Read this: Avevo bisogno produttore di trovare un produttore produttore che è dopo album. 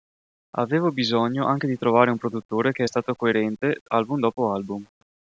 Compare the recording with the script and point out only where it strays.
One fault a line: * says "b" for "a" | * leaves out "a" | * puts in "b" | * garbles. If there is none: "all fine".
* says "anche" for "produttore"
* leaves out "produttore"
* puts in "stato coerente album"